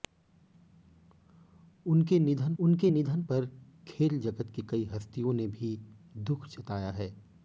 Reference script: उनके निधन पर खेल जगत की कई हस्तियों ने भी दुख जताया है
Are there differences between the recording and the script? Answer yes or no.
yes